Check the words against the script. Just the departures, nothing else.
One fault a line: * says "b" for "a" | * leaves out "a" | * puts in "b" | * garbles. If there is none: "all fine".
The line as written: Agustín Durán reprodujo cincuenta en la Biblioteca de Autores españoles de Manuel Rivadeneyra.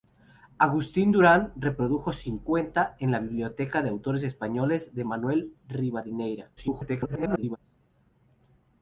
* garbles